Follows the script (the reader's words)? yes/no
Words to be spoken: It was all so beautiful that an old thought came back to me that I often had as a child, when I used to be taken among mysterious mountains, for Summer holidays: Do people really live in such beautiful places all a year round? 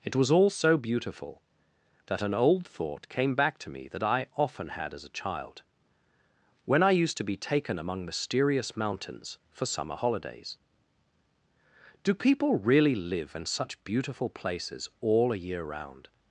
yes